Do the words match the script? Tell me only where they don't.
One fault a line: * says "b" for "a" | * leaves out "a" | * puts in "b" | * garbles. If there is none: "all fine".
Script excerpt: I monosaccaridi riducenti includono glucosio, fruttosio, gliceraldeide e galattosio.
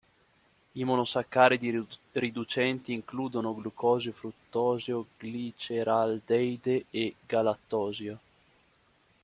all fine